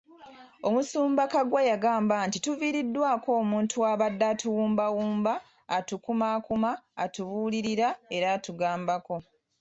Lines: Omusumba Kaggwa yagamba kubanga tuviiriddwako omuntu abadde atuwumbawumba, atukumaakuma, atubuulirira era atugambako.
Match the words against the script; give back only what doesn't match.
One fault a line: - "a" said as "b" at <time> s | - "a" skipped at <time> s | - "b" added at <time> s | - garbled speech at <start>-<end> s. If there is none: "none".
- "kubanga" said as "nti" at 2.3 s